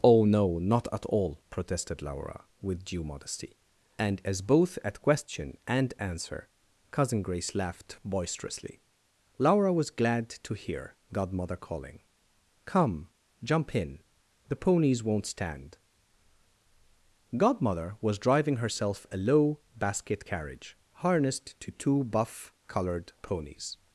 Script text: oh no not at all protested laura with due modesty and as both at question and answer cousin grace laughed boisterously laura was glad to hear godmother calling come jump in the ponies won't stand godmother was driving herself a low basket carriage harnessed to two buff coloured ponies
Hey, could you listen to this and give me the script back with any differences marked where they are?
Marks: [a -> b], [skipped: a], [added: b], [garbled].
oh no not at all protested laura with due modesty and as both at question and answer cousin grace laughed boisterously laura was glad to hear godmother calling come jump in the ponies won't stand godmother was driving herself a low basket carriage harnessed to two buff coloured ponies